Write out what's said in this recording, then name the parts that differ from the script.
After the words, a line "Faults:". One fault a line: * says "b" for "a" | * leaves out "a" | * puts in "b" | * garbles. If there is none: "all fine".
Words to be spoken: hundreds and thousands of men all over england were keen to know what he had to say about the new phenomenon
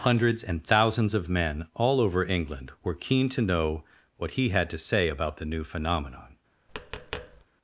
hundreds and thousands of men all over england were keen to know what he had to say about the new phenomenon
Faults:
all fine